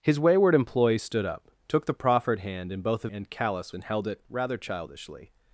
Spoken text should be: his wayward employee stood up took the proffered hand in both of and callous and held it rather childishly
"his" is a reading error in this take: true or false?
false